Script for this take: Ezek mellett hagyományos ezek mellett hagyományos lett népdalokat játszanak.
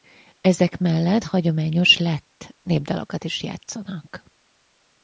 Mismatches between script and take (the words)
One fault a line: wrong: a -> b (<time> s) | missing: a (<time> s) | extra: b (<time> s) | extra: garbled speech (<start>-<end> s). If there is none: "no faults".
missing: ezek mellett hagyományos (2.0 s)
extra: is (3.2 s)